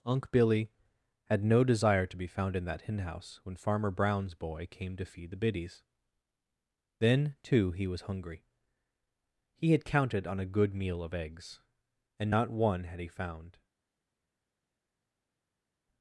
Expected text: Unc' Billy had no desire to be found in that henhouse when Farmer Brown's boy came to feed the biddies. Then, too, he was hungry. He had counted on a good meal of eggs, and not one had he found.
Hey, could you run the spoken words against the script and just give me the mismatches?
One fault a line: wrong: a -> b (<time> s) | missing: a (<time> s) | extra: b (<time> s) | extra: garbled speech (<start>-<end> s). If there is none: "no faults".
no faults